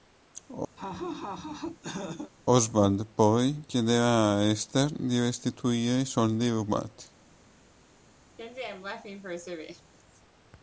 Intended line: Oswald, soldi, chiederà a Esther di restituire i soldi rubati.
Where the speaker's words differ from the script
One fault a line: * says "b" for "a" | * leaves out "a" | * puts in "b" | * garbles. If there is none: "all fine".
* says "poi" for "soldi"